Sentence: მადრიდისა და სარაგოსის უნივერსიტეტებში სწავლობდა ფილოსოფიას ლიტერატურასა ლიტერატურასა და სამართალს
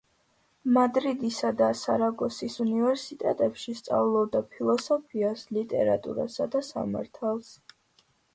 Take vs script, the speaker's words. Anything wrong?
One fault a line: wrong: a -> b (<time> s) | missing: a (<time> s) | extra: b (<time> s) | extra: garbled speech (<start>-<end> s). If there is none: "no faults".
missing: ლიტერატურასა (6.5 s)